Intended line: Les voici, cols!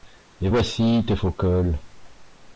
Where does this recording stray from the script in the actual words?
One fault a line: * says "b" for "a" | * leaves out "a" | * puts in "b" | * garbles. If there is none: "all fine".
* puts in "tes faux"